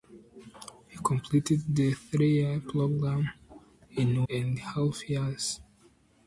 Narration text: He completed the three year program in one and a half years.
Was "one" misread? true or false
true